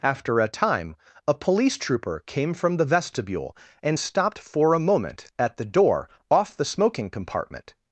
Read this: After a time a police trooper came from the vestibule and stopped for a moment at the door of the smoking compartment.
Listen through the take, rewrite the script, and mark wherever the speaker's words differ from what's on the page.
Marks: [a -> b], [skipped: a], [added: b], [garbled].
After a time a police trooper came from the vestibule and stopped for a moment at the door [of -> off] the smoking compartment.